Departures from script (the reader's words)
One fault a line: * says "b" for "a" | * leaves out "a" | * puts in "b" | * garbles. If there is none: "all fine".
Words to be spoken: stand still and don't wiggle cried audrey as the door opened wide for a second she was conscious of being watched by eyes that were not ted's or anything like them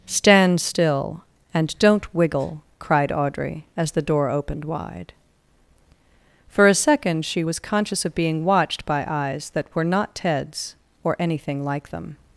all fine